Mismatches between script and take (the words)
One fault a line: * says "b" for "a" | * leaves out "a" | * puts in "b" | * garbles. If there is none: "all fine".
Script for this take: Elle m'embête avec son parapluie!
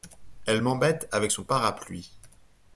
all fine